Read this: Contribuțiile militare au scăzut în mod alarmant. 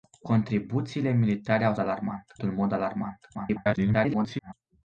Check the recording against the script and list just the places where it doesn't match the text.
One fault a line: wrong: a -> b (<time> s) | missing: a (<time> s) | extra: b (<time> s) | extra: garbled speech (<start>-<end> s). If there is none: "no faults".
wrong: scăzut -> alarmant (1.8 s)
extra: garbled speech (3.3-4.5 s)